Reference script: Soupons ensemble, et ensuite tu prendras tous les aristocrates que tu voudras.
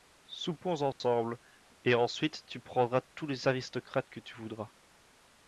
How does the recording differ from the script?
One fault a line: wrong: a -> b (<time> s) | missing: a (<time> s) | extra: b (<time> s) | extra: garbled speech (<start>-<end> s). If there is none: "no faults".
no faults